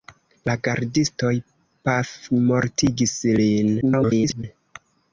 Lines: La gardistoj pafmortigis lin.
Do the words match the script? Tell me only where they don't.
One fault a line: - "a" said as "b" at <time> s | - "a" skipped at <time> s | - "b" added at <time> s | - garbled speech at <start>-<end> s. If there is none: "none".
- garbled speech at 3.8-4.4 s